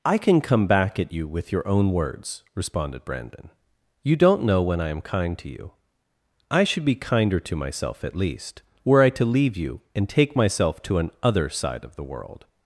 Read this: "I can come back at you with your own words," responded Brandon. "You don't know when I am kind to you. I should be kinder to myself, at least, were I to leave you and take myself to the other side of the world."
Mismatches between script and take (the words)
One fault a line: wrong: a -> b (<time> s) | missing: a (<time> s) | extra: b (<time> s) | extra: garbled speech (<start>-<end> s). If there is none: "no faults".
wrong: the -> an (11.0 s)